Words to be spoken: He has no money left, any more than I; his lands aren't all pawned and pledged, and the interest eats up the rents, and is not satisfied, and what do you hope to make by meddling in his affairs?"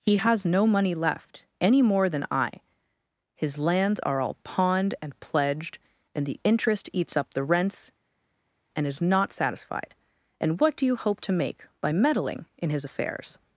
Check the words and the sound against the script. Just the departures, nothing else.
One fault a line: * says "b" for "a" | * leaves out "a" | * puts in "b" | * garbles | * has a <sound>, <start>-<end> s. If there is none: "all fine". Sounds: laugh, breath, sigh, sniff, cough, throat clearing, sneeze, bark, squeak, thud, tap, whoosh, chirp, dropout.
* says "are" for "aren't"